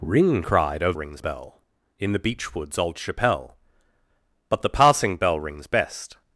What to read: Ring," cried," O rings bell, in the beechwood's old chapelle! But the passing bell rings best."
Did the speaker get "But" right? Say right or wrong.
right